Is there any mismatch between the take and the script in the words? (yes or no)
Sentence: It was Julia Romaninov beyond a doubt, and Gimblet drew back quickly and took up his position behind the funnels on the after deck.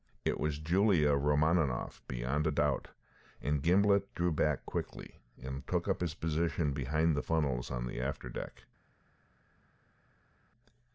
no